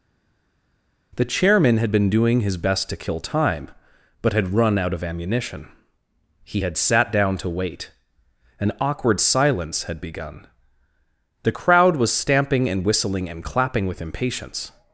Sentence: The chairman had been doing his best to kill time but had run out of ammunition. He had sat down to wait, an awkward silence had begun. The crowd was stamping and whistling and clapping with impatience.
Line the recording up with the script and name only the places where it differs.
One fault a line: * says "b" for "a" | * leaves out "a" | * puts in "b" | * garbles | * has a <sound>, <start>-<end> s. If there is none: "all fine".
all fine